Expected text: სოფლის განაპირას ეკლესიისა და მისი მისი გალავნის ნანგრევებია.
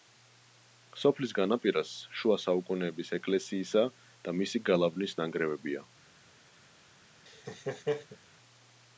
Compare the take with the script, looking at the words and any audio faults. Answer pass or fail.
fail